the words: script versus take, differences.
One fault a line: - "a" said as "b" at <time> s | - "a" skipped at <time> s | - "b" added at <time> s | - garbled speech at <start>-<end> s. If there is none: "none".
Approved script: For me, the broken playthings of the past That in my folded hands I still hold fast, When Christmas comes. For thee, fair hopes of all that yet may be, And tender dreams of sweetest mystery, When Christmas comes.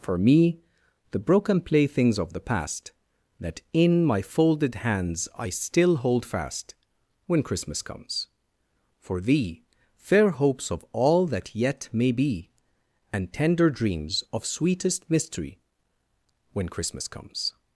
none